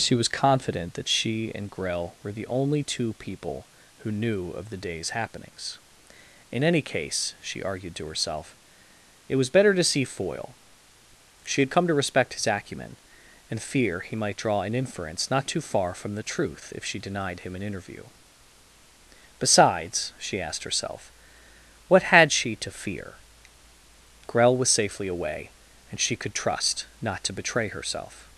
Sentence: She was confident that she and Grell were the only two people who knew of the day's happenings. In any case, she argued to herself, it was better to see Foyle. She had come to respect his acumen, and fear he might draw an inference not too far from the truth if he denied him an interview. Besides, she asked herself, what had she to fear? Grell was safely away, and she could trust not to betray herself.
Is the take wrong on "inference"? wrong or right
right